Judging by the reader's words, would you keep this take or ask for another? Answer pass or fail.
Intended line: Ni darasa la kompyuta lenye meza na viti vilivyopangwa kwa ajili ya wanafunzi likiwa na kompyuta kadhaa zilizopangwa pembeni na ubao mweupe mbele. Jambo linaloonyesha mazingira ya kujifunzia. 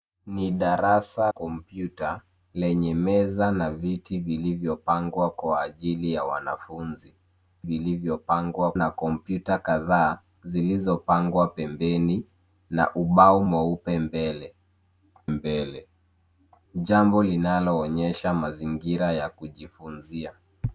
fail